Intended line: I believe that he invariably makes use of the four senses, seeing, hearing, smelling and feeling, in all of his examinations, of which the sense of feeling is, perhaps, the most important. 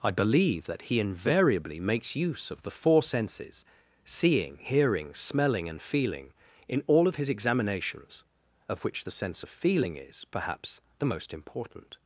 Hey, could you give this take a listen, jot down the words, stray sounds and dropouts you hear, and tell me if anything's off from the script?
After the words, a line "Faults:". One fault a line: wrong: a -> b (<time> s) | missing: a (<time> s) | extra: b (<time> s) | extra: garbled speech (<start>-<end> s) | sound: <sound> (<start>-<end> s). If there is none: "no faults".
I believe that he invariably makes use of the four senses, seeing, hearing, smelling and feeling, in all of his examinations, of which the sense of feeling is, perhaps, the most important.
Faults:
no faults